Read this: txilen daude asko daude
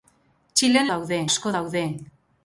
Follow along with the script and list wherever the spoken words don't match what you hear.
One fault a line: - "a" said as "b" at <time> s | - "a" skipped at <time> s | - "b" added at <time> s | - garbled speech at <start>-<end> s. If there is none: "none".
none